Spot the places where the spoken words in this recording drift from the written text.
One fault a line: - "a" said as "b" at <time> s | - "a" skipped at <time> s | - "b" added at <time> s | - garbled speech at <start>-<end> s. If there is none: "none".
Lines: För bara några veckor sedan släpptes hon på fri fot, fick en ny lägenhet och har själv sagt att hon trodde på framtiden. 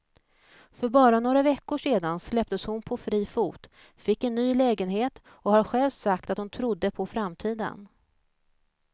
none